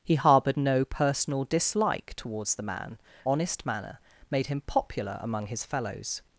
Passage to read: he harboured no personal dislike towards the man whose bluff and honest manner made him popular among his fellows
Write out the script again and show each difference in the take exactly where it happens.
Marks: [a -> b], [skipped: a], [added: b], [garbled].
he harboured no personal dislike towards the man [skipped: whose bluff and] honest manner made him popular among his fellows